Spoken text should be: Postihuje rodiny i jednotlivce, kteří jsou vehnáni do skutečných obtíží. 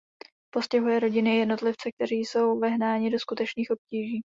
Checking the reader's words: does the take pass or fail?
pass